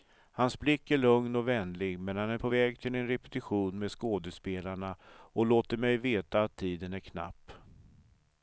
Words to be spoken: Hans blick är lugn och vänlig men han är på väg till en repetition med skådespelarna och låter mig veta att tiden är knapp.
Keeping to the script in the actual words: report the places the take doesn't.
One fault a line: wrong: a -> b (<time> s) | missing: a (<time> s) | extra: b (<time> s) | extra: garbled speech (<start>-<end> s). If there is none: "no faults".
no faults